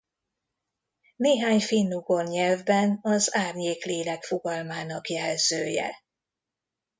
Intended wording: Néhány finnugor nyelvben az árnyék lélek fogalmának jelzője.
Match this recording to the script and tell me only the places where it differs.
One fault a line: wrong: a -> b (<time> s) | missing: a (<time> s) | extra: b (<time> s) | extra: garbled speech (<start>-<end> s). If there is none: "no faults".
no faults